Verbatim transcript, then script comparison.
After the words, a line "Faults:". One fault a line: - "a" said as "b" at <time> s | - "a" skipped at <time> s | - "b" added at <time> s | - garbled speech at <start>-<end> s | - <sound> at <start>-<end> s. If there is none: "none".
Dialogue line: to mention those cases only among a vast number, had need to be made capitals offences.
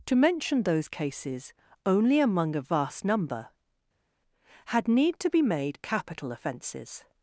to mention those cases only among a vast number, had need to be made capital offences.
Faults:
- "capitals" said as "capital" at 5.8 s